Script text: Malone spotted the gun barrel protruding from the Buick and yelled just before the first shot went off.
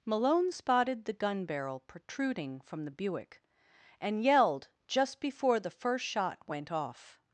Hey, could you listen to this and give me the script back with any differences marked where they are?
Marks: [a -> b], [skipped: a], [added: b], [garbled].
Malone spotted the gun barrel protruding from the Buick and yelled just before the first shot went off.